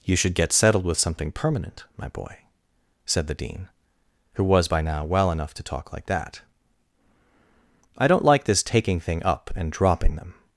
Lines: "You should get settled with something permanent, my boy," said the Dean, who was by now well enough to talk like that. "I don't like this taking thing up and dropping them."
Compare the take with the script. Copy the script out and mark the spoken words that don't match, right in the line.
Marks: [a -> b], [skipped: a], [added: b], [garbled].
"You should get settled with something permanent, my boy," said the Dean, who was by now well enough to talk like that. "I don't like this taking thing up and dropping them."